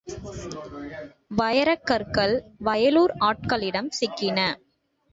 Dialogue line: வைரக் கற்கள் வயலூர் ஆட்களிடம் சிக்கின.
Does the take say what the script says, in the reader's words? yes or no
yes